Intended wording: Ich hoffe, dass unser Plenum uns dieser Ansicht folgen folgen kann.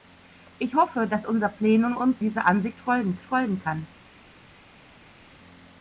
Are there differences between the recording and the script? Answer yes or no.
no